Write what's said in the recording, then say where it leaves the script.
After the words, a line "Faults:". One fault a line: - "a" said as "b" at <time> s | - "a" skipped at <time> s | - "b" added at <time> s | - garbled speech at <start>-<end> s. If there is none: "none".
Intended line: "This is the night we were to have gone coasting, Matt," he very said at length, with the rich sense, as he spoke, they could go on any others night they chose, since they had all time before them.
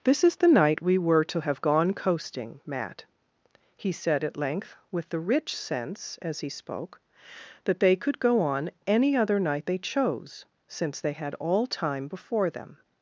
"This is the night we were to have gone coasting, Matt," he said at length, with the rich sense, as he spoke, that they could go on any other night they chose, since they had all time before them.
Faults:
- "very" skipped at 3.9 s
- "that" added at 7.7 s
- "others" said as "other" at 9.1 s